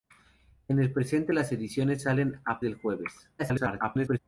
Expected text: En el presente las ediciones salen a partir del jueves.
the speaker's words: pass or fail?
fail